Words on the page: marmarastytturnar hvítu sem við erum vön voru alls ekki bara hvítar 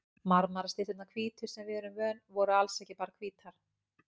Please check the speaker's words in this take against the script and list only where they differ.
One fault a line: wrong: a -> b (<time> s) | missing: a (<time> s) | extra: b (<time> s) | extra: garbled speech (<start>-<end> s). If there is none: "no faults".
no faults